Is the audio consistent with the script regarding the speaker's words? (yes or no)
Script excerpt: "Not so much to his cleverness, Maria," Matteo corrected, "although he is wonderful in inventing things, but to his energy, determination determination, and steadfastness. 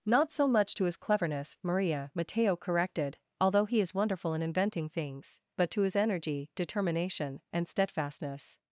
no